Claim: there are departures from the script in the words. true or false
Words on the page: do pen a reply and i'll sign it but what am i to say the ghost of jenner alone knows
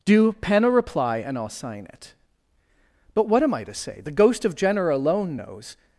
false